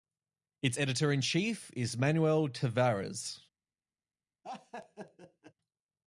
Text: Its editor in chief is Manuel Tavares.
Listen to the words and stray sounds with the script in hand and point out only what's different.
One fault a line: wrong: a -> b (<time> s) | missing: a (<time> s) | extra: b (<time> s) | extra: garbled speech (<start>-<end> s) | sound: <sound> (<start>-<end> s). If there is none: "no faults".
sound: laugh (4.4-5.5 s)